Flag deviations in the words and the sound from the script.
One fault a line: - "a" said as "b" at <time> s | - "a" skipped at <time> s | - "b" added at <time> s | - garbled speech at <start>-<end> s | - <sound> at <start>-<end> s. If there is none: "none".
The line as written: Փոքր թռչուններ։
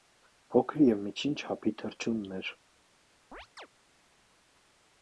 - "և միջին չափի" added at 0.8 s
- chirp at 3.3-3.7 s